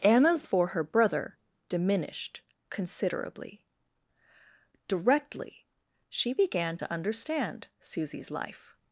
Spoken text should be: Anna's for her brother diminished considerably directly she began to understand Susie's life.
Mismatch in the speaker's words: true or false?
false